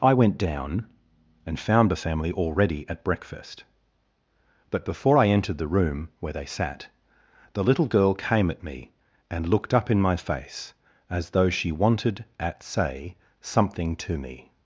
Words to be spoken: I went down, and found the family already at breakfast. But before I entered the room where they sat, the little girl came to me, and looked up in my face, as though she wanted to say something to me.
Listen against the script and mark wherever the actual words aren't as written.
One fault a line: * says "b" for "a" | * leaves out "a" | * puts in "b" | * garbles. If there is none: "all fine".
* says "at" for "to"
* says "at" for "to"